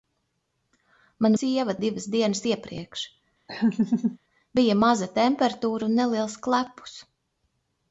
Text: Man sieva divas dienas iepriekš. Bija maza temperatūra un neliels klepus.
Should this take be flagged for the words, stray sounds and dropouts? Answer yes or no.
yes